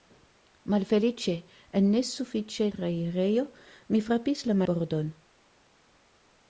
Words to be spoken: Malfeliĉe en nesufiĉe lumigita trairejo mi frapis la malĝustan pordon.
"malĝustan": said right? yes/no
no